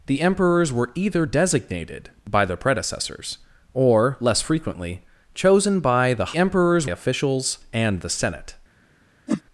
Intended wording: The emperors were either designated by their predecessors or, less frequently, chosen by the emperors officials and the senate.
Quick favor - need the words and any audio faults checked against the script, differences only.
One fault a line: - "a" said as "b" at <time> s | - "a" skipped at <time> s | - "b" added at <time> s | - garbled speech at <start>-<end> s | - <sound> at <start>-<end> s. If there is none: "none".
- whoosh at 9.3-9.4 s